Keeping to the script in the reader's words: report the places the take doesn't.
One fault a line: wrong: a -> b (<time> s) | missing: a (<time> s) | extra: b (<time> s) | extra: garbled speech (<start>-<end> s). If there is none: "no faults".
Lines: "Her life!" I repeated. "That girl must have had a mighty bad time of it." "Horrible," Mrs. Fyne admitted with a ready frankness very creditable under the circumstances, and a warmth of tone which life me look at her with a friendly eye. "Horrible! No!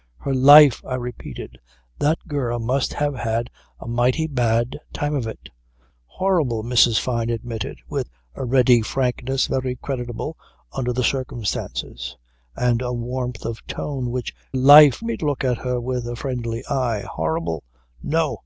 no faults